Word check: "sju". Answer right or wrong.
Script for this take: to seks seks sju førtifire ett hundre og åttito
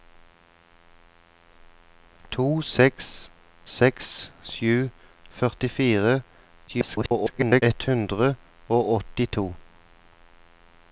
right